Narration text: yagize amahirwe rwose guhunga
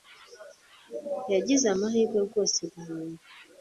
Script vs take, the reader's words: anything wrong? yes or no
no